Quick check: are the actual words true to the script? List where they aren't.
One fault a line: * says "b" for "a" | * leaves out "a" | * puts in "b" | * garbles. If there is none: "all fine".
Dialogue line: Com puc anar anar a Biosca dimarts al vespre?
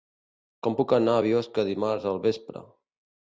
* leaves out "anar"